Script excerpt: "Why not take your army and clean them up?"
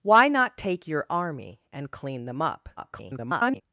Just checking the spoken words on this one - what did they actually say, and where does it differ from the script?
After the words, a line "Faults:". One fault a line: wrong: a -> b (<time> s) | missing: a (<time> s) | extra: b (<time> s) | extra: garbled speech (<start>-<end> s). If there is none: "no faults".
"Why not take your army and clean them up?" [garbled]
Faults:
extra: garbled speech (2.8-3.6 s)